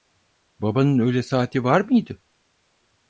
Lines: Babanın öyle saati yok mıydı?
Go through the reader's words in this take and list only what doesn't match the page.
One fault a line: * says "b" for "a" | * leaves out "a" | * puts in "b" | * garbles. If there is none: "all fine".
* says "var" for "yok"